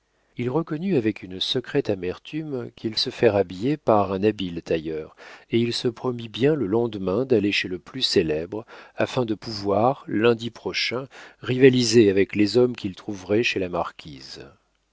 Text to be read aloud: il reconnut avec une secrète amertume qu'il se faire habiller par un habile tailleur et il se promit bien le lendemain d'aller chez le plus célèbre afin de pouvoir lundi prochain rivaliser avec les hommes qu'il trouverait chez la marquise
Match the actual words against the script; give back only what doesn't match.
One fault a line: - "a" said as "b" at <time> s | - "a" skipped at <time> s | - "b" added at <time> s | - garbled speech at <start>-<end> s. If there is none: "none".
none